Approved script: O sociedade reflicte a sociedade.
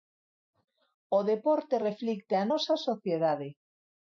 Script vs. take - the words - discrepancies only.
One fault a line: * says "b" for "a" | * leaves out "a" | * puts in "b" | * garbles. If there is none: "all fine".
* says "deporte" for "sociedade"
* puts in "nosa"